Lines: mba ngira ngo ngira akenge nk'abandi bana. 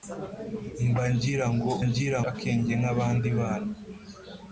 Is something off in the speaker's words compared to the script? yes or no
no